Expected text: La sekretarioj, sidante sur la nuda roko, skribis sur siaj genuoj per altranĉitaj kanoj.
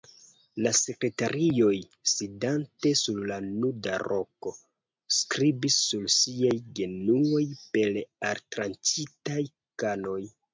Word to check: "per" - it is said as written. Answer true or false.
true